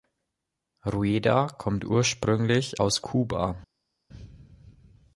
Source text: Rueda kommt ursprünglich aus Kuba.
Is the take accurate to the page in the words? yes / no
yes